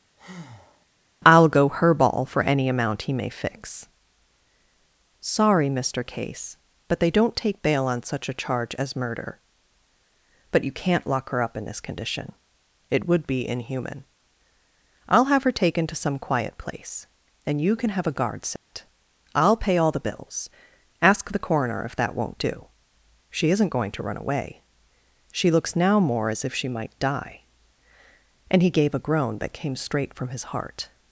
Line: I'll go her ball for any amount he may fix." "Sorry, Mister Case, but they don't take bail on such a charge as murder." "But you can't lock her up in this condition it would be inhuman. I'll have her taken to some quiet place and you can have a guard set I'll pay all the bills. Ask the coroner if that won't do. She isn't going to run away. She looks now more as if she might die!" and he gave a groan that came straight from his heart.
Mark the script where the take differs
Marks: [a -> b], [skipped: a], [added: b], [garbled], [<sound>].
[breath] I'll go her ball for any amount he may fix." "Sorry, Mister Case, but they don't take bail on such a charge as murder." "But you can't lock her up in this condition it would be inhuman. I'll have her taken to some quiet place and you can have a guard set [dropout] I'll pay all the bills. Ask the coroner if that won't do. She isn't going to run away. She looks now more as if she might die!" and he gave a groan that came straight from his heart.